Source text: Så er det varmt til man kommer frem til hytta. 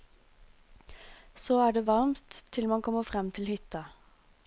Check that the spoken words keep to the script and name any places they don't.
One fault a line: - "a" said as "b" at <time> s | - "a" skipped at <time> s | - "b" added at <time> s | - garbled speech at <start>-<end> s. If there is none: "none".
none